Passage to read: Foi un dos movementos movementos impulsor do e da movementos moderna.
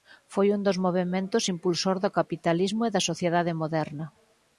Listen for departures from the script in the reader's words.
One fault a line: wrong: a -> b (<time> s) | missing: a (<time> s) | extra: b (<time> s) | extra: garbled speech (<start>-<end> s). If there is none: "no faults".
missing: movementos (1.4 s)
extra: capitalismo (2.2 s)
wrong: movementos -> sociedade (3.1 s)